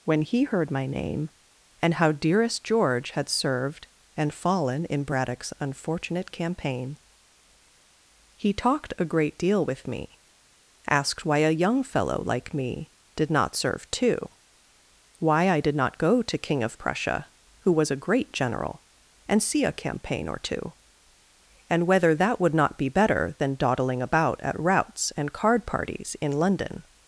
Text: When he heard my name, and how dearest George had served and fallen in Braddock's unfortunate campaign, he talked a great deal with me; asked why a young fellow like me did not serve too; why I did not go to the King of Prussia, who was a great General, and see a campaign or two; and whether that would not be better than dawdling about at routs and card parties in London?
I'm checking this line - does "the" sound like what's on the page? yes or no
no